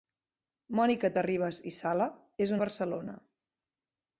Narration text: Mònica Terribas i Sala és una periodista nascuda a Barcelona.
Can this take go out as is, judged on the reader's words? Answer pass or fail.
fail